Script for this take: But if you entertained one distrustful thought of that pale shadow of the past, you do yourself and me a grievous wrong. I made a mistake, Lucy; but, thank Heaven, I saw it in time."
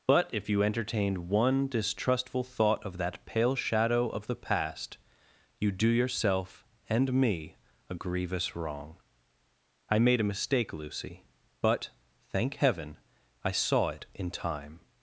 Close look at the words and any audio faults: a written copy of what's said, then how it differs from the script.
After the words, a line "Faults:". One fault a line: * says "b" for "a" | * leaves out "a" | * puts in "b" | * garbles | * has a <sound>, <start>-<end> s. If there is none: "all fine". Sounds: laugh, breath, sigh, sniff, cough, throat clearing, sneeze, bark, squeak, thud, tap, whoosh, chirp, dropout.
But if you entertained one distrustful thought of that pale shadow of the past, you do yourself and me a grievous wrong. I made a mistake, Lucy; but, thank Heaven, I saw it in time."
Faults:
all fine